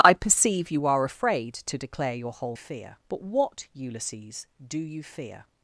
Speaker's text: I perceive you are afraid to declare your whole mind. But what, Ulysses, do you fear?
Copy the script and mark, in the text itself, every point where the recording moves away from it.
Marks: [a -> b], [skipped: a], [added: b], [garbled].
I perceive you are afraid to declare your whole [mind. -> fear] But what, Ulysses, do you fear?